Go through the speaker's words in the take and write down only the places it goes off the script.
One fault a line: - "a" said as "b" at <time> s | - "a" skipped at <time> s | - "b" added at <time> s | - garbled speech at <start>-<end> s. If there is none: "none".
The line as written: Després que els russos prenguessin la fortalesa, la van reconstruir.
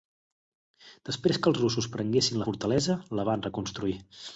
none